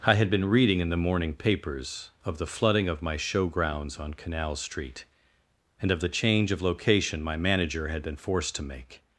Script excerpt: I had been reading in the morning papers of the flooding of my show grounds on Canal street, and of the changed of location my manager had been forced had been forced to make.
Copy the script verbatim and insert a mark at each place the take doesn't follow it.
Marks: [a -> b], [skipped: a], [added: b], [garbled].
I had been reading in the morning papers of the flooding of my show grounds on Canal street, and of the [changed -> change] of location my manager had been forced [skipped: had been forced] to make.